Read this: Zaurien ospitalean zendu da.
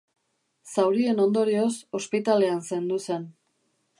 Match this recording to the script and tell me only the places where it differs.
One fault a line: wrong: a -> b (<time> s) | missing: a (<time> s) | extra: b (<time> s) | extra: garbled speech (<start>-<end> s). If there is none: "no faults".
extra: ondorioz (1.2 s)
wrong: da -> zen (3.1 s)